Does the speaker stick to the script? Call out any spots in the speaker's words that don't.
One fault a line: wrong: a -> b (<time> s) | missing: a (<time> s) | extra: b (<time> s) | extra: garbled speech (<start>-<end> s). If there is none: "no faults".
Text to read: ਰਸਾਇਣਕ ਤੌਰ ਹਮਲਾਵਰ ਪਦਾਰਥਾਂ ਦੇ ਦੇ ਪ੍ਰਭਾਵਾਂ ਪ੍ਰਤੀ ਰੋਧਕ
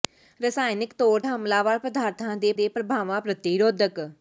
no faults